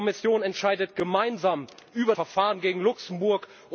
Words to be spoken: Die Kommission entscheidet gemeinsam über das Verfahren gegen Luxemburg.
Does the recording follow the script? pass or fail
fail